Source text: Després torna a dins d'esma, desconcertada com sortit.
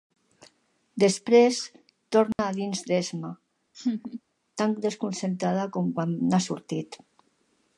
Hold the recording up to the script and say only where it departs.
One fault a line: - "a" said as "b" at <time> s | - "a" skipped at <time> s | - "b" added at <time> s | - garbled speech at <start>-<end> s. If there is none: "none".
- "tan" added at 4.6 s
- "quan n'ha" added at 6.0 s